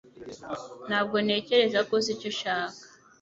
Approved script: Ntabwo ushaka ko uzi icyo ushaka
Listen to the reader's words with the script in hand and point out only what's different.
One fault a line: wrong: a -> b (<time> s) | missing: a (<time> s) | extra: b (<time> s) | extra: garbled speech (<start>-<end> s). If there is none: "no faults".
wrong: ushaka -> ntekereza (1.2 s)